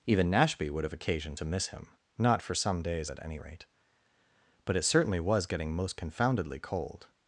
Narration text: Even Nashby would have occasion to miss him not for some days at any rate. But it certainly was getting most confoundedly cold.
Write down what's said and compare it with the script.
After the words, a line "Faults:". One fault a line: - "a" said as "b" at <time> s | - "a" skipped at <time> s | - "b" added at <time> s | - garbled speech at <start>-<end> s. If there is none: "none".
Even Nashby would have occasion to miss him not for some days at any rate. But it certainly was getting most confoundedly cold.
Faults:
none